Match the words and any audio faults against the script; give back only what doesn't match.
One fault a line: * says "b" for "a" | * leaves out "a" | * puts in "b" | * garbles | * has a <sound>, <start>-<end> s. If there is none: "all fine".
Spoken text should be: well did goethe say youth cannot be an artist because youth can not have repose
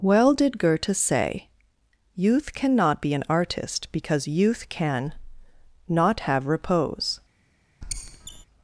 * has a squeak, 7.8-8.5 s